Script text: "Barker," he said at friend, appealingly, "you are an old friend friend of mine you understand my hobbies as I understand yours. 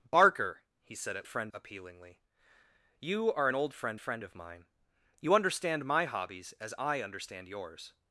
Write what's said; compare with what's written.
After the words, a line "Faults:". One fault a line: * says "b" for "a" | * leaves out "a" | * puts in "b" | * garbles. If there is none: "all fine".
"Barker," he said at friend, appealingly, "you are an old friend friend of mine you understand my hobbies as I understand yours.
Faults:
all fine